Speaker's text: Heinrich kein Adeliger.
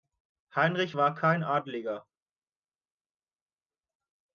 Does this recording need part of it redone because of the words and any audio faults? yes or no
yes